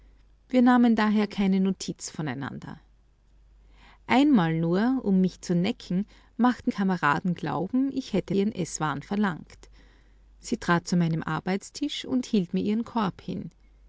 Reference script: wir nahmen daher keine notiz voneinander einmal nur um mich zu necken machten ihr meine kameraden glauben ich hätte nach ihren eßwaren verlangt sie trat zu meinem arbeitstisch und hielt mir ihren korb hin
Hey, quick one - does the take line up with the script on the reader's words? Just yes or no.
no